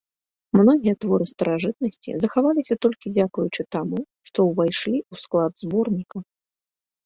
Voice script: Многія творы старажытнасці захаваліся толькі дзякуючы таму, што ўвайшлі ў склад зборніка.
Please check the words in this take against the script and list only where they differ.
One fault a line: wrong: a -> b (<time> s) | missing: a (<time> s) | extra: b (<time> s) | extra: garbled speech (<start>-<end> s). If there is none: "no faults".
no faults